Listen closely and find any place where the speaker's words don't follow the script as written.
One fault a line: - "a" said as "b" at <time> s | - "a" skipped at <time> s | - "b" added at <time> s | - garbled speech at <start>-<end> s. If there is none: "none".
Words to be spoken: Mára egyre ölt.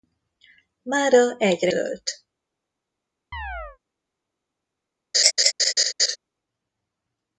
none